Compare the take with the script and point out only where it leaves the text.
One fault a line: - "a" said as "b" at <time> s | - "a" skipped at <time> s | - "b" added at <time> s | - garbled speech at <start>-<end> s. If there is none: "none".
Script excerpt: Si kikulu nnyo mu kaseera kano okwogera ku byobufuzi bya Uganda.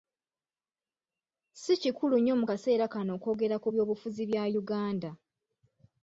none